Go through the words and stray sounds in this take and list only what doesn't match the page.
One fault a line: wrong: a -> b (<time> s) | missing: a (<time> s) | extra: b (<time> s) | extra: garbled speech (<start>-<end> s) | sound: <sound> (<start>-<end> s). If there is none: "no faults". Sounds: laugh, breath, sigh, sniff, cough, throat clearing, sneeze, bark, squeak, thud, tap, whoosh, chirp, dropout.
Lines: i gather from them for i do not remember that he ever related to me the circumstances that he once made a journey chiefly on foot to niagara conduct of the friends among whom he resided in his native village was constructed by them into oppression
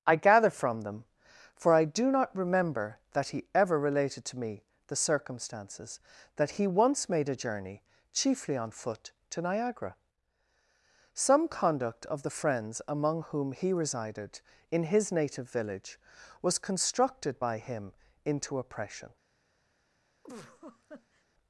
extra: some (11.1 s)
wrong: them -> him (17.6 s)
sound: laugh (20.2-21.2 s)